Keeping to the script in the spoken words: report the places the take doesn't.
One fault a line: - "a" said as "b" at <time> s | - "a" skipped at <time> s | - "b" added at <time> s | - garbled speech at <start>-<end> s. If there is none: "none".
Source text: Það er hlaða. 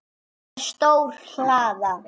- "stór" added at 0.7 s